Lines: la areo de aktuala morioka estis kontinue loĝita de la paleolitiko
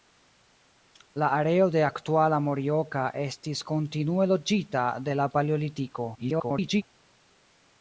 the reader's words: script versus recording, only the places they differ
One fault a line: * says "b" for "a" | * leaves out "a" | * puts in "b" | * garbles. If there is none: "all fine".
* garbles